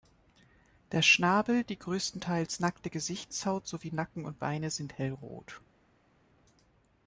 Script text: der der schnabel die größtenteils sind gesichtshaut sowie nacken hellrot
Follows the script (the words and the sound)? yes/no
no